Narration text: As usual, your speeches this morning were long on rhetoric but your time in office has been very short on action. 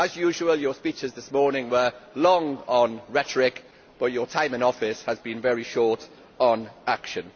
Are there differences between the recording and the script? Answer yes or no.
no